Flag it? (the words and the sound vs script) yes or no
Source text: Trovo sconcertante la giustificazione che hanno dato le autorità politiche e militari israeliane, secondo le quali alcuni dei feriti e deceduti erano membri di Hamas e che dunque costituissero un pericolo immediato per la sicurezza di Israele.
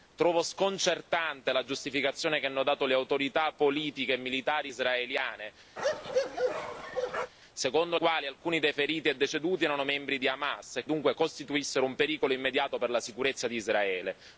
yes